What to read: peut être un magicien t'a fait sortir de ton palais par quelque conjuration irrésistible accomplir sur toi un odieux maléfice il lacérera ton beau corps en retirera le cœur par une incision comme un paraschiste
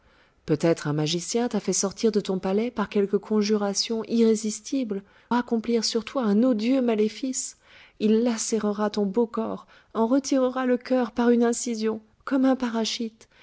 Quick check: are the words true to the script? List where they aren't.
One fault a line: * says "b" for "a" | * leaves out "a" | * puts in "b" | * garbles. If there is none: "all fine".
all fine